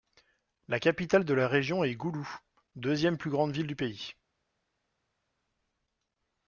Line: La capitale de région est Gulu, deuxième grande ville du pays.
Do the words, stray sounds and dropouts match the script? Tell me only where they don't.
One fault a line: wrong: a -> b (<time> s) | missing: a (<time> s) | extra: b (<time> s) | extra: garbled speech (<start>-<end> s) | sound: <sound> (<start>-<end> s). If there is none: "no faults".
extra: la (1.4 s)
extra: plus (3.2 s)